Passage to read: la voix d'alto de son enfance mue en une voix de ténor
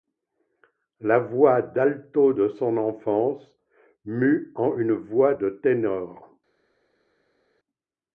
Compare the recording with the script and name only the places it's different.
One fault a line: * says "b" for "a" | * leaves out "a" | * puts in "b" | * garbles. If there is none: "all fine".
all fine